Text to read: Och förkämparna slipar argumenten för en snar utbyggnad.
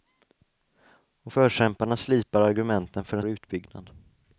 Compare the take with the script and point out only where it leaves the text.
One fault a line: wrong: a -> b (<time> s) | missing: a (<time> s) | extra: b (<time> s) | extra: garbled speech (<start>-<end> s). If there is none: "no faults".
missing: snar (3.2 s)